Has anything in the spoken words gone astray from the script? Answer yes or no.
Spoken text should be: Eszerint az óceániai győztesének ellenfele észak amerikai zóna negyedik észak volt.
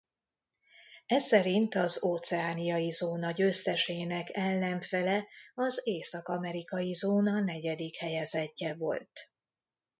yes